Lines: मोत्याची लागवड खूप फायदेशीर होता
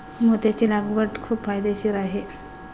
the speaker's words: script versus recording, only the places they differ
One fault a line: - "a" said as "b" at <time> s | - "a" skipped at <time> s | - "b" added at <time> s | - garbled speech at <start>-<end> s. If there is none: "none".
- "होता" said as "आहे" at 2.0 s